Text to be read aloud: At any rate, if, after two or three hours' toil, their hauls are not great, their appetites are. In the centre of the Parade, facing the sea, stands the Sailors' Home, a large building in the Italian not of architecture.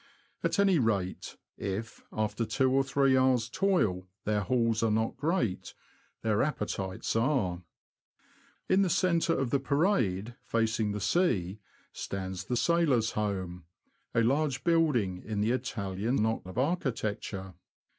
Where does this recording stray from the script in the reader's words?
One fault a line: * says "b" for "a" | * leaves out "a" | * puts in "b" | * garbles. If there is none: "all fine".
all fine